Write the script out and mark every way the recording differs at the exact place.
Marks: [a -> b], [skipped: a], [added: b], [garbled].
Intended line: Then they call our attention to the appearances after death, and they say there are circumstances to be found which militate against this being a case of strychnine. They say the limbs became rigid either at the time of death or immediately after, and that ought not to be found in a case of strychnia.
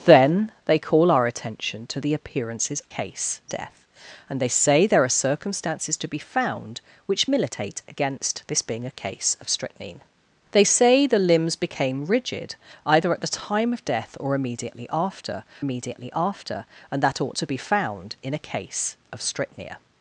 Then they call our attention to the appearances [after -> case] death, and they say there are circumstances to be found which militate against this being a case of strychnine. They say the limbs became rigid either at the time of death or immediately after, [added: immediately after] and that ought [skipped: not] to be found in a case of strychnia.